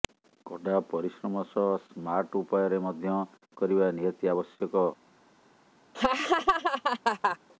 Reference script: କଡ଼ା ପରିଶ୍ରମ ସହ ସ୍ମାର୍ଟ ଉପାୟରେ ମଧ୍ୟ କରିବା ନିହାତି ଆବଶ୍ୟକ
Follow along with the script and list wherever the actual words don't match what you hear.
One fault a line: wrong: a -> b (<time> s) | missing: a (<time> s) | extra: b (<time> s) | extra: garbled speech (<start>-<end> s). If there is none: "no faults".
no faults